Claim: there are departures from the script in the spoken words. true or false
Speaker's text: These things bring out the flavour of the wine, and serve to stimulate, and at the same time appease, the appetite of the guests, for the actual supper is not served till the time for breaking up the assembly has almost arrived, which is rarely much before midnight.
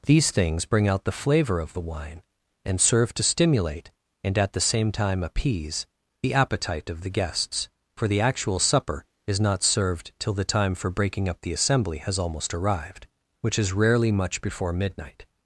false